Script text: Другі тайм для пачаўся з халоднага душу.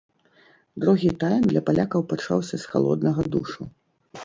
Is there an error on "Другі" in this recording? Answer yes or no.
no